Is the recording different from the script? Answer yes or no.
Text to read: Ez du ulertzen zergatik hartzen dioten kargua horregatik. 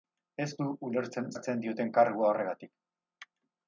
yes